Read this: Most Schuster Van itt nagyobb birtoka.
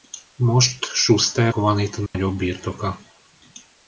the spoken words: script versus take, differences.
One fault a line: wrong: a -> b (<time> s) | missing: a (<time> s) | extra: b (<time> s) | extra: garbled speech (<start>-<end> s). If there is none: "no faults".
no faults